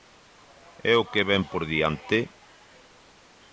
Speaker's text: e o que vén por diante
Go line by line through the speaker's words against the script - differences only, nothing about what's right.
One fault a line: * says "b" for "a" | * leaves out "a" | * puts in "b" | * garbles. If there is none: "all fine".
all fine